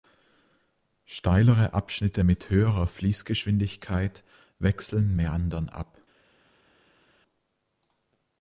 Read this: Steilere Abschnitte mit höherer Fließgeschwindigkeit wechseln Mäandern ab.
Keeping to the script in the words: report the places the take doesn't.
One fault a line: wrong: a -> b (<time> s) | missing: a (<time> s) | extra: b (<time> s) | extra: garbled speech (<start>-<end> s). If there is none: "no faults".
no faults